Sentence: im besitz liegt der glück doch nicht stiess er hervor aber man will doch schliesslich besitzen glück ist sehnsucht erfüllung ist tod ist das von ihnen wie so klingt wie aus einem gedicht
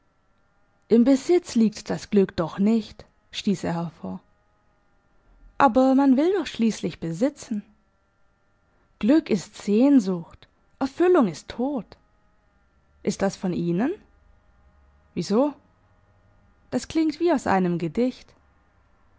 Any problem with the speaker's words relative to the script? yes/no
yes